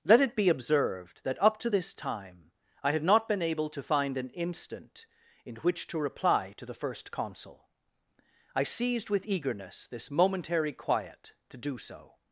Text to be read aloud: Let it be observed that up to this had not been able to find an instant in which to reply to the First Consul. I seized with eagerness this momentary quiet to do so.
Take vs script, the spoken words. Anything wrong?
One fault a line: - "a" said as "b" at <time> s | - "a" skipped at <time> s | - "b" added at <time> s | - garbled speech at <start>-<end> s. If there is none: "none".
- "time I" added at 1.9 s